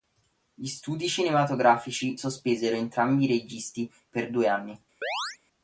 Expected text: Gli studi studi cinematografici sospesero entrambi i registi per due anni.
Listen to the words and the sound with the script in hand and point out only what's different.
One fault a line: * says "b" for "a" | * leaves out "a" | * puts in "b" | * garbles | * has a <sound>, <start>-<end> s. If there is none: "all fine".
* leaves out "studi"
* has a chirp, 5.0-5.4 s